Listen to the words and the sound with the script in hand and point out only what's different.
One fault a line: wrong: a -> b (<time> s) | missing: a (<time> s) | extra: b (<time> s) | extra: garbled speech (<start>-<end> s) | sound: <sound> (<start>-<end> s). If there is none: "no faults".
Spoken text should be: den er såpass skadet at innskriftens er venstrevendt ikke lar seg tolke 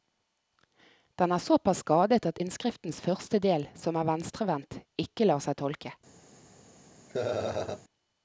extra: første del som (3.1 s)
sound: laugh (7.1-7.8 s)